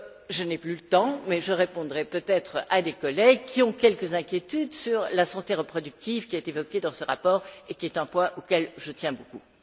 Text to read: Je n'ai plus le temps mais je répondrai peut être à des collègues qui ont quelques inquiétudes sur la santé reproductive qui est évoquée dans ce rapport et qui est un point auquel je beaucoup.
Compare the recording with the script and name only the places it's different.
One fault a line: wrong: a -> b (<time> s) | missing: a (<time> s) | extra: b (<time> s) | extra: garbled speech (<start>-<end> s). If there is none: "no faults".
extra: tiens (8.9 s)